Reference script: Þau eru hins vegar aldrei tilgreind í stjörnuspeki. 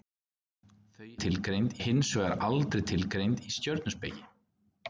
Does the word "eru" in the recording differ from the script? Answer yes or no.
yes